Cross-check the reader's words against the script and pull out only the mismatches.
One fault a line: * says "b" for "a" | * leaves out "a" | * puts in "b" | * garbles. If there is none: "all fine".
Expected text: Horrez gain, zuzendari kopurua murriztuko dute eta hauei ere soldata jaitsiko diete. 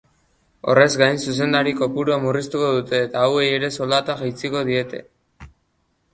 all fine